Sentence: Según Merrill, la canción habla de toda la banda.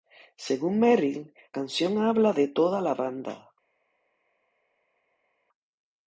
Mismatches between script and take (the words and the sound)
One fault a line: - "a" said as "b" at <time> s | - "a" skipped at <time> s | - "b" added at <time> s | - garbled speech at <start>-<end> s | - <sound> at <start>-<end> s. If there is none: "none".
- "la" skipped at 1.3 s